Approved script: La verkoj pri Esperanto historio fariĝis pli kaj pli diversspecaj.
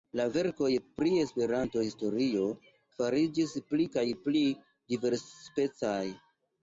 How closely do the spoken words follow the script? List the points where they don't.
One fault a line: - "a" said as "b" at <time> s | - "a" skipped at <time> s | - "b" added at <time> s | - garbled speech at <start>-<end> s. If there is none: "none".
none